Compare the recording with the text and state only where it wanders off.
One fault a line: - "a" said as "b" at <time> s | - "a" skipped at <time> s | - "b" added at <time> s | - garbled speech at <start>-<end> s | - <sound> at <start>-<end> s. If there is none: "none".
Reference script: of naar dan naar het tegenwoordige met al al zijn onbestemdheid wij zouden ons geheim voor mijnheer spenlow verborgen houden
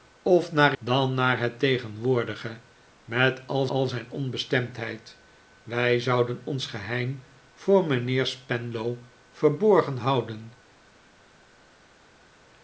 none